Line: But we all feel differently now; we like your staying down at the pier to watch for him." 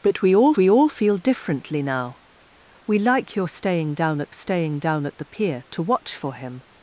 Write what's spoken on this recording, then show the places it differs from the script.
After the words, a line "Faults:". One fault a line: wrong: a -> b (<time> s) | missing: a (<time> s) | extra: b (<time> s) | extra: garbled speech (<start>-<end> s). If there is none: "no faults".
But we all we all feel differently now; we like your staying down at staying down at the pier to watch for him."
Faults:
extra: we all (0.6 s)
extra: staying down at (4.3 s)